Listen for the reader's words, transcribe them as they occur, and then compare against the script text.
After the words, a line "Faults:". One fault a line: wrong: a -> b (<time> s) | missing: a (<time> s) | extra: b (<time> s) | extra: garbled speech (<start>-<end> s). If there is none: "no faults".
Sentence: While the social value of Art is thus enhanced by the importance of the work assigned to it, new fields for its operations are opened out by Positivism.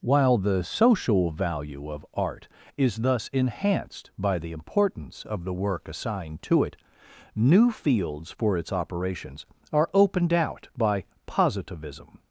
While the social value of Art is thus enhanced by the importance of the work assigned to it, new fields for its operations are opened out by Positivism.
Faults:
no faults